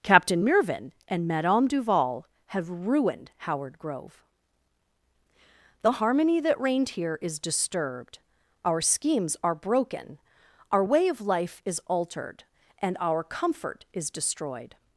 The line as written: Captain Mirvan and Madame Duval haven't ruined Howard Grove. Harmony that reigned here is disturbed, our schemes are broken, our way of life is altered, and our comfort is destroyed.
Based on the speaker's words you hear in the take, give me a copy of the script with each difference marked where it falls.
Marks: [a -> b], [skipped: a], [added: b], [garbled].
Captain Mirvan and Madame Duval [haven't -> have] ruined Howard Grove. [added: The] Harmony that reigned here is disturbed, our schemes are broken, our way of life is altered, and our comfort is destroyed.